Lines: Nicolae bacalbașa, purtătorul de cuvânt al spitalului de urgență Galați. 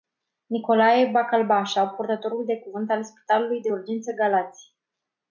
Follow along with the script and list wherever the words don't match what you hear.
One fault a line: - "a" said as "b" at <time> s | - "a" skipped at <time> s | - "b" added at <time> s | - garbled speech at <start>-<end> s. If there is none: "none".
none